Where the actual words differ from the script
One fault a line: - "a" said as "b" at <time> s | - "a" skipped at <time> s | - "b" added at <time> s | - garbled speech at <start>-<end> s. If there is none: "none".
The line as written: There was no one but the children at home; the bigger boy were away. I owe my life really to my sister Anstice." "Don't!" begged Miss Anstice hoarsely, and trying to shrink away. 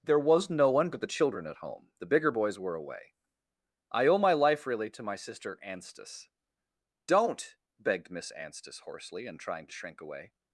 - "boy" said as "boys" at 2.3 s